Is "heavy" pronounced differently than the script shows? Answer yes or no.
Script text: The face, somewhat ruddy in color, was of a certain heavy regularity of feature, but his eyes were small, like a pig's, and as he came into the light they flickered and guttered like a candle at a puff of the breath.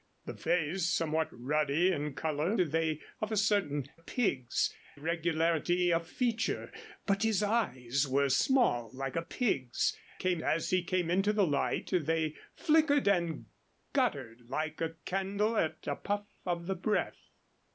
yes